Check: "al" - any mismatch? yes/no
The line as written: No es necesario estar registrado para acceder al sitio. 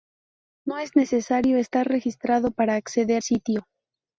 yes